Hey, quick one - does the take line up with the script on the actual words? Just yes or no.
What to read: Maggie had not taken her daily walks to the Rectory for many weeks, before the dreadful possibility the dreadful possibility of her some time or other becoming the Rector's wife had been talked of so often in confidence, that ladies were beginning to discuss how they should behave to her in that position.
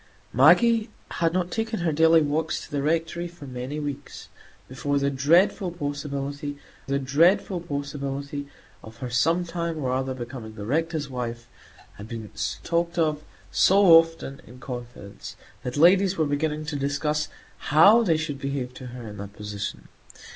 yes